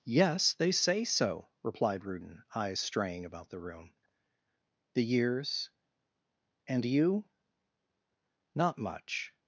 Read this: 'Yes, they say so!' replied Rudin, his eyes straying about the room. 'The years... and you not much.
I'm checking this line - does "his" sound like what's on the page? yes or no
no